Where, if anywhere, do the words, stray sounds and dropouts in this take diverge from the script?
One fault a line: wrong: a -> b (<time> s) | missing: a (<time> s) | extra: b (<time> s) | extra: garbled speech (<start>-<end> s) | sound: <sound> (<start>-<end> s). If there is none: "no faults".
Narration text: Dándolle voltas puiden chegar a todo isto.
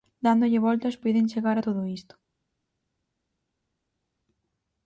no faults